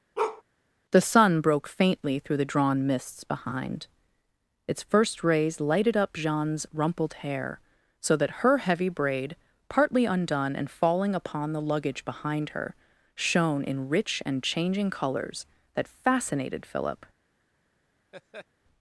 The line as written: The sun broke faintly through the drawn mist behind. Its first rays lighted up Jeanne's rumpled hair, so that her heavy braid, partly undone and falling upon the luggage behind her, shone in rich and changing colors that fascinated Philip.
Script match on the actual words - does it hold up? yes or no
no